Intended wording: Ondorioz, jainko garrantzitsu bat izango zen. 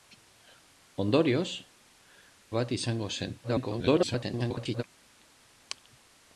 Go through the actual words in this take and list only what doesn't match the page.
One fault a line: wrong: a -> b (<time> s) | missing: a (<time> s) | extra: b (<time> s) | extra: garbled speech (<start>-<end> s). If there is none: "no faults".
missing: jainko garrantzitsu (1.5 s)
extra: garbled speech (3.4-4.8 s)